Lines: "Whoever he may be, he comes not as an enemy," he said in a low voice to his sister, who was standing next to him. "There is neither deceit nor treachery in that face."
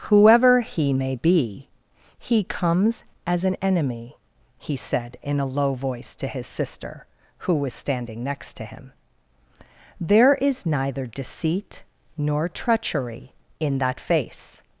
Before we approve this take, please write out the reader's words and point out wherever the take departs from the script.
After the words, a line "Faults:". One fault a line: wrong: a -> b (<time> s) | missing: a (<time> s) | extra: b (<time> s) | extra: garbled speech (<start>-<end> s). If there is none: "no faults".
"Whoever he may be, he comes as an enemy," he said in a low voice to his sister, who was standing next to him. "There is neither deceit nor treachery in that face."
Faults:
missing: not (3.0 s)